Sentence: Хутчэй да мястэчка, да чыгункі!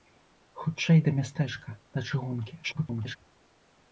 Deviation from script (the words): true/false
true